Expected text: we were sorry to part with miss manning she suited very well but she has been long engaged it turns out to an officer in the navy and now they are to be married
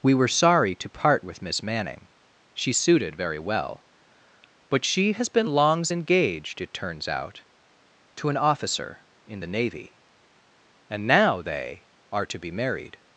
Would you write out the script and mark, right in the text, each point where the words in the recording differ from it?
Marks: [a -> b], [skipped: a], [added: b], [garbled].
we were sorry to part with miss manning she suited very well but she has been [long -> longs] engaged it turns out to an officer in the navy and now they are to be married